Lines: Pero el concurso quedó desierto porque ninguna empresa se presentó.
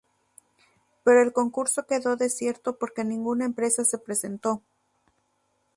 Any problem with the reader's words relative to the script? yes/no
no